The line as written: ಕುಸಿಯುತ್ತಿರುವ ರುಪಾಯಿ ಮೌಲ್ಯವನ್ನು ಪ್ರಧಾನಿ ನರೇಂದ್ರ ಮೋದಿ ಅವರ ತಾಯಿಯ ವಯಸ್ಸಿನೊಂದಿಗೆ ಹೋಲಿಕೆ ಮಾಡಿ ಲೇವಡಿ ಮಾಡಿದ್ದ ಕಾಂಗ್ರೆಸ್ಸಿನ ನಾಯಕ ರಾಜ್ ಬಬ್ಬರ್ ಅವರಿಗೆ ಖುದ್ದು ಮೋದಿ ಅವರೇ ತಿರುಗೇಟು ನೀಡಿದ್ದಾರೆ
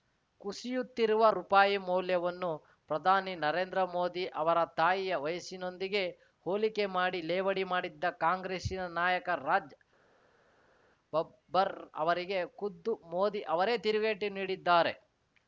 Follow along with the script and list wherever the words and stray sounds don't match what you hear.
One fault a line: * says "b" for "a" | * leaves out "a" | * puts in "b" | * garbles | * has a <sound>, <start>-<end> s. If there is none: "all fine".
all fine